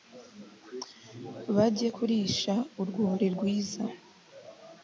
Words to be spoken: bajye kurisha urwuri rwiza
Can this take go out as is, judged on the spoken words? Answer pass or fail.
pass